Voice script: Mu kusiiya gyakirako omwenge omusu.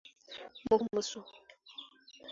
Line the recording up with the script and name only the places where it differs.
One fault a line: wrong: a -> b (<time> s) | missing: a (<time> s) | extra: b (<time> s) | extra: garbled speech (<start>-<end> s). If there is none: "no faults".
missing: kusiiya gyakirako omwenge (0.8 s)